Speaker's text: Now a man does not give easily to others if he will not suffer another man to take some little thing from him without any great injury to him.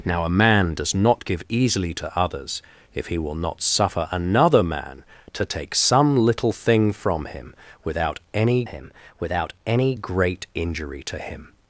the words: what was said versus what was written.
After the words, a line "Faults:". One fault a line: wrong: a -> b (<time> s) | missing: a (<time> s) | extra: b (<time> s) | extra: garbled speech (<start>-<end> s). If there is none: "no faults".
Now a man does not give easily to others if he will not suffer another man to take some little thing from him without any him without any great injury to him.
Faults:
extra: him without any (8.6 s)